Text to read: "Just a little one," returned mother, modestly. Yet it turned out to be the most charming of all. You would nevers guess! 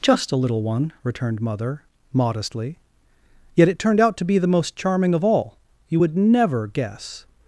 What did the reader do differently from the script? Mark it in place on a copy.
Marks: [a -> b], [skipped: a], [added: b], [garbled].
"Just a little one," returned mother, modestly. Yet it turned out to be the most charming of all. You would [nevers -> never] guess!